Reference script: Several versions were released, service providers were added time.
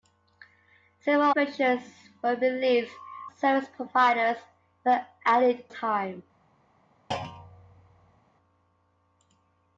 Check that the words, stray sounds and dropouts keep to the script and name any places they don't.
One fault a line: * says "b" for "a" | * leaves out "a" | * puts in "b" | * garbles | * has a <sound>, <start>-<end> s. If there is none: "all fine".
* has a thud, 7.1-8.2 s